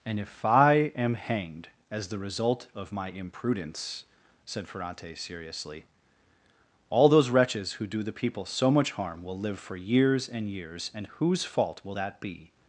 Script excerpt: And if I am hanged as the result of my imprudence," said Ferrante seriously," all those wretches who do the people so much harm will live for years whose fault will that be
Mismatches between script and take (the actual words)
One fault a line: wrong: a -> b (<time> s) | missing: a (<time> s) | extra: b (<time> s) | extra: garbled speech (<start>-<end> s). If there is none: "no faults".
extra: and years and (10.3 s)